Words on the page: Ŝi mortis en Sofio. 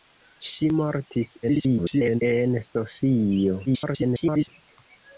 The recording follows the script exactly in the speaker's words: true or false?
false